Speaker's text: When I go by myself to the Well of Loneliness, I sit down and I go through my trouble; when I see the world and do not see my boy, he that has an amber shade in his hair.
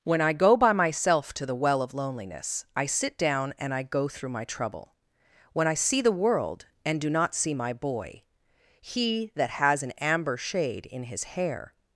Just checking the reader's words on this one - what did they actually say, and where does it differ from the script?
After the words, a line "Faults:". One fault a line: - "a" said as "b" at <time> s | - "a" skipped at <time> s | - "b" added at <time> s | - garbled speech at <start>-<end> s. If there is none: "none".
When I go by myself to the Well of Loneliness, I sit down and I go through my trouble; when I see the world and do not see my boy, he that has an amber shade in his hair.
Faults:
none